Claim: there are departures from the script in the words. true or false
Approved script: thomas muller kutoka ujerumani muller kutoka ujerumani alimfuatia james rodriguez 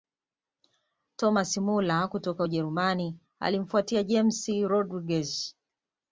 true